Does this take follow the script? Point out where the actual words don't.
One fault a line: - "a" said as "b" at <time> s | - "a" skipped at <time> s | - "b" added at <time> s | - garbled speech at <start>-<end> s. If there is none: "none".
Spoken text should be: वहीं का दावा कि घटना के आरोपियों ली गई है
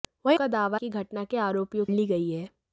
none